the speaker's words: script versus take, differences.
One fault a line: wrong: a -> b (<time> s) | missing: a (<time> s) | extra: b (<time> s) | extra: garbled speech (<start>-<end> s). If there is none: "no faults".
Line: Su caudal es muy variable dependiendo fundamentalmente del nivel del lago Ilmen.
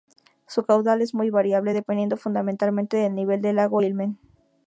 no faults